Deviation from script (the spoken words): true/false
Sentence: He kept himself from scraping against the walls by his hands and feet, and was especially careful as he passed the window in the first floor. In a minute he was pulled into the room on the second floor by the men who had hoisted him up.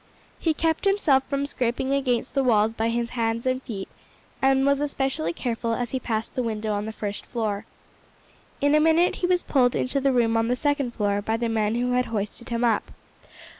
true